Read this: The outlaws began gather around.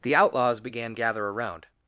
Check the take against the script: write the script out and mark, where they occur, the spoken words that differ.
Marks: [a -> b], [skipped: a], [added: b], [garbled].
The outlaws began gather around.